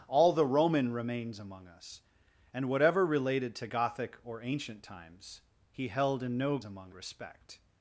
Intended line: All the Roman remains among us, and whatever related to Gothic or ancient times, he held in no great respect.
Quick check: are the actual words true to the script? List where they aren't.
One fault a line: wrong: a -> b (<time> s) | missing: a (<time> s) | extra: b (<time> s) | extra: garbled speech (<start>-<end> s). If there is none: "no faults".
wrong: great -> among (6.6 s)